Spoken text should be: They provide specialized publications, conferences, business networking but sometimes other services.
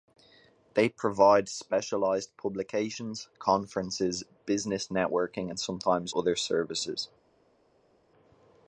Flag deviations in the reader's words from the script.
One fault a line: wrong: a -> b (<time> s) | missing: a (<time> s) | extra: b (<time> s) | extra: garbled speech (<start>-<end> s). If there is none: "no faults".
wrong: but -> and (5.5 s)